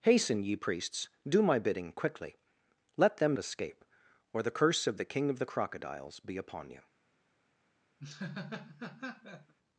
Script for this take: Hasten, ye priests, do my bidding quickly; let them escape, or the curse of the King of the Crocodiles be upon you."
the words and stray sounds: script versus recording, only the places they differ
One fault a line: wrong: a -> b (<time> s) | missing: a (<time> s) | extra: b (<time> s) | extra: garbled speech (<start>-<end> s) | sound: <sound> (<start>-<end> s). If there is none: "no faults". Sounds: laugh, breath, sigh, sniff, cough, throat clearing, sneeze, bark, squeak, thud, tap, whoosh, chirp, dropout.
sound: laugh (8.0-9.5 s)